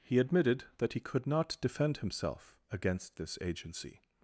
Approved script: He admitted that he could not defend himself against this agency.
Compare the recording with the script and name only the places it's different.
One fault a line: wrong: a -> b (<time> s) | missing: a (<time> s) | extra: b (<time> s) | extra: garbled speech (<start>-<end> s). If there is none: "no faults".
no faults